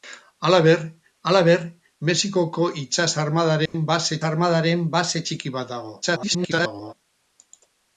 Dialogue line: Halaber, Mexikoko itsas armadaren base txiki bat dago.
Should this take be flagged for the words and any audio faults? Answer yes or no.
yes